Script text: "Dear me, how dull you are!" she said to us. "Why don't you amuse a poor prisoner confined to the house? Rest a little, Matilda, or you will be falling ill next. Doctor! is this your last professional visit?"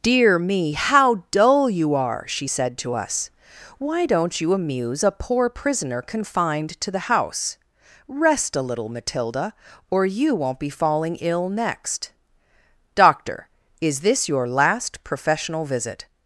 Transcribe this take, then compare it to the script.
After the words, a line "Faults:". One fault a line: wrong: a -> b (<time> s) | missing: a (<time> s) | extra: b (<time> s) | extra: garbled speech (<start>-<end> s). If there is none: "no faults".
"Dear me, how dull you are!" she said to us. "Why don't you amuse a poor prisoner confined to the house? Rest a little, Matilda, or you won't be falling ill next. Doctor! is this your last professional visit?"
Faults:
wrong: will -> won't (10.3 s)